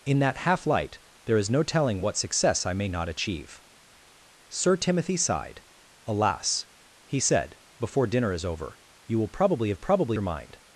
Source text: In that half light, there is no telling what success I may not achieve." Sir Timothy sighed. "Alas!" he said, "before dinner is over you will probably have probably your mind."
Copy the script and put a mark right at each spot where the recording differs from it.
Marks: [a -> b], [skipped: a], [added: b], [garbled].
In that half light, there is no telling what success I may not achieve." Sir Timothy sighed. "Alas!" he said, "before dinner is over you will probably have probably your mind."